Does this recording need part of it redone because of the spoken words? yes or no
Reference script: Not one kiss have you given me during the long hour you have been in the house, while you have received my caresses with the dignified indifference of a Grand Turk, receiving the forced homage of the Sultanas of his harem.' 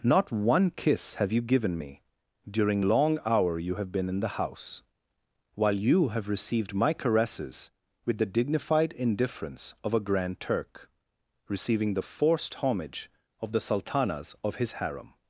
yes